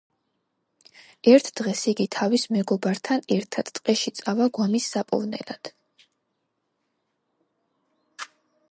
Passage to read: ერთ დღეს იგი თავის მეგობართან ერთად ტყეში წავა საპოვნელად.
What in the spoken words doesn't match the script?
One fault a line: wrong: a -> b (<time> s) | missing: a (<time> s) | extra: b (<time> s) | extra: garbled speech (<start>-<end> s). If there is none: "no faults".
extra: გვამის (4.6 s)